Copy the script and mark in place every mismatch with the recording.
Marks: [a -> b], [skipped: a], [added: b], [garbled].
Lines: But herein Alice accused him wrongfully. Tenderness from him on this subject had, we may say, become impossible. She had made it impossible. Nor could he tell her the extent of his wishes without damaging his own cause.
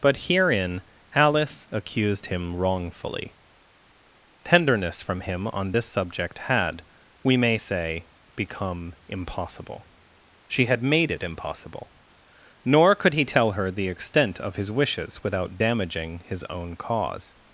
But herein Alice accused him wrongfully. Tenderness from him on this subject had, we may say, become impossible. She had made it impossible. Nor could he tell her the extent of his wishes without damaging his own cause.